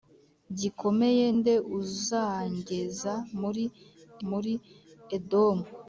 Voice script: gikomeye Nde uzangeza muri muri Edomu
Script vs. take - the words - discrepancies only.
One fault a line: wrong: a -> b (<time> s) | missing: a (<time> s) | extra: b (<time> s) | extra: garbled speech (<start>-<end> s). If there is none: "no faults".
no faults